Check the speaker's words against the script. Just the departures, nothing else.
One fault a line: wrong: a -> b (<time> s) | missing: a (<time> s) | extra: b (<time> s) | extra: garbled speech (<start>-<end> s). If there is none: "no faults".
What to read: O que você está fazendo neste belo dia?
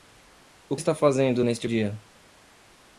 missing: que você (0.8 s)
missing: belo (1.7 s)